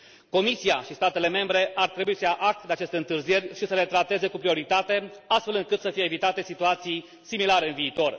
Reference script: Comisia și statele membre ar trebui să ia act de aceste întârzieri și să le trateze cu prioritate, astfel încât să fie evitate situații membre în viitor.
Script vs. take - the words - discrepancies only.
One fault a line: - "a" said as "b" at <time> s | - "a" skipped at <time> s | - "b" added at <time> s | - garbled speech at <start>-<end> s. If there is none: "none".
- "membre" said as "similare" at 7.2 s